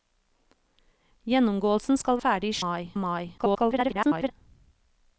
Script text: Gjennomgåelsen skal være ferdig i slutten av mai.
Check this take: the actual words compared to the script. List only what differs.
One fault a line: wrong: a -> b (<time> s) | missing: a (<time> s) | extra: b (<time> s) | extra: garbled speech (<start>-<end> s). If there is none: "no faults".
missing: være (2.2 s)
wrong: slutten -> mai (2.6 s)
extra: garbled speech (3.4-4.3 s)